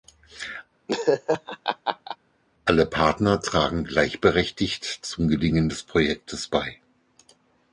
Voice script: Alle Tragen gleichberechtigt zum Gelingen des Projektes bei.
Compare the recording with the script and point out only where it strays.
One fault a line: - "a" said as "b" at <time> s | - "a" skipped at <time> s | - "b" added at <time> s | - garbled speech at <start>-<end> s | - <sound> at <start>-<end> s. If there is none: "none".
- laugh at 0.9-2.2 s
- "Partner" added at 2.9 s